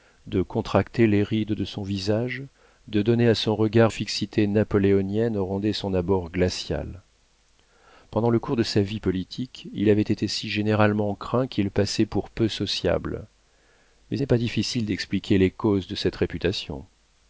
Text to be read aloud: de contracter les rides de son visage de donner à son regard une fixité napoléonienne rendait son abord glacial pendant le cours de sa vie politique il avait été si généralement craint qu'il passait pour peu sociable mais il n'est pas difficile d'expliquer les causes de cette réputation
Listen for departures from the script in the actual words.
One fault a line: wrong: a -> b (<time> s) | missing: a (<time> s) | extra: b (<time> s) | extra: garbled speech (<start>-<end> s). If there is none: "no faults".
missing: une (3.9 s)
missing: il (14.2 s)